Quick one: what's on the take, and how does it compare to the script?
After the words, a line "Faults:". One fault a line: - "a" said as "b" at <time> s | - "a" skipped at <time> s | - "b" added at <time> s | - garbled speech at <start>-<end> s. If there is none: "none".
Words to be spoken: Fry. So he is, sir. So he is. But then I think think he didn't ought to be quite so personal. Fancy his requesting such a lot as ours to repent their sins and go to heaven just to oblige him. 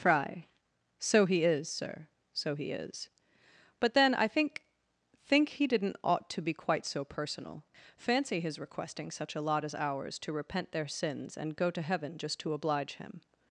Fry. So he is, sir. So he is. But then I think think he didn't ought to be quite so personal. Fancy his requesting such a lot as ours to repent their sins and go to heaven just to oblige him.
Faults:
none